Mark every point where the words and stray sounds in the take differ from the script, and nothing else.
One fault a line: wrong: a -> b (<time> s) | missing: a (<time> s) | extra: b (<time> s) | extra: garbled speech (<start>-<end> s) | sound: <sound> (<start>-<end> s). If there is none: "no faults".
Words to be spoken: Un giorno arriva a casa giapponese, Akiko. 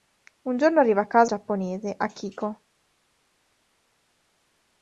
no faults